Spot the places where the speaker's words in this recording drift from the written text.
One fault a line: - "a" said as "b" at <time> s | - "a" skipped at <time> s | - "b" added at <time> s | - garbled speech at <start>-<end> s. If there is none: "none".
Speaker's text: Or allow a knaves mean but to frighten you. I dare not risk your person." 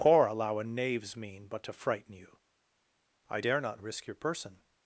none